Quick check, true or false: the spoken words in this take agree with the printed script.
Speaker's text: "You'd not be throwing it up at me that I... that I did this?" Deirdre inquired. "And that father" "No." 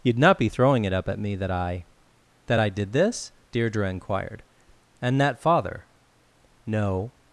true